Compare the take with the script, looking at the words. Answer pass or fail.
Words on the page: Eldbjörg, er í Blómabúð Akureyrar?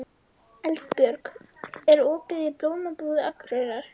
fail